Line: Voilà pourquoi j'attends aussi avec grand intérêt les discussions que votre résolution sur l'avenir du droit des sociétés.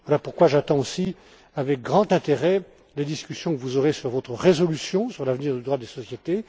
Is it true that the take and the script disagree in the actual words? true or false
true